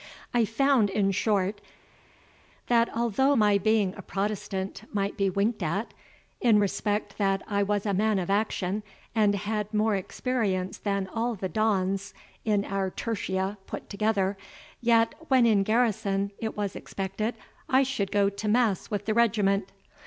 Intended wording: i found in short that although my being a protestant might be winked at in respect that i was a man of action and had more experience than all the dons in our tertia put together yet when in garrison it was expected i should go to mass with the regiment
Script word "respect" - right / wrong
right